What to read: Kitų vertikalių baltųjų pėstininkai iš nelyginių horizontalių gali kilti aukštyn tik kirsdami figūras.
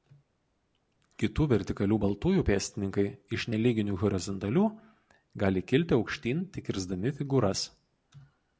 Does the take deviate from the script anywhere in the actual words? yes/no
no